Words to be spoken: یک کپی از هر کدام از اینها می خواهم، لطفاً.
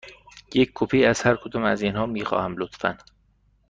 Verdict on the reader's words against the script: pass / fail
pass